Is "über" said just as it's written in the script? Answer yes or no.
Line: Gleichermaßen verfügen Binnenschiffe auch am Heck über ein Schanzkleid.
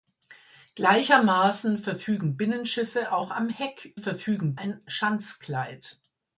no